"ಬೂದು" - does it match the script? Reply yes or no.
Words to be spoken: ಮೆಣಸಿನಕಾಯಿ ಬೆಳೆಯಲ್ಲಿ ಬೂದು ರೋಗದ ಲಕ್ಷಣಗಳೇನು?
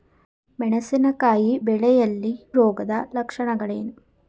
no